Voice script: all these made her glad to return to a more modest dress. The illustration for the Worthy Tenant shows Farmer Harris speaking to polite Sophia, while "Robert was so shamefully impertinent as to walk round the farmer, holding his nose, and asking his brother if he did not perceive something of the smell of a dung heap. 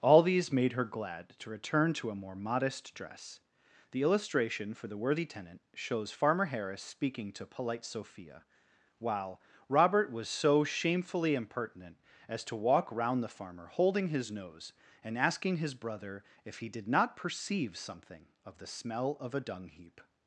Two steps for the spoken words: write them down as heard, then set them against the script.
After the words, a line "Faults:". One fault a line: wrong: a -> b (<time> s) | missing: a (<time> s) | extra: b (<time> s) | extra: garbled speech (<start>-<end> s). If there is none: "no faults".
all these made her glad to return to a more modest dress. The illustration for the Worthy Tenant shows Farmer Harris speaking to polite Sophia, while "Robert was so shamefully impertinent as to walk round the farmer, holding his nose, and asking his brother if he did not perceive something of the smell of a dung heap.
Faults:
no faults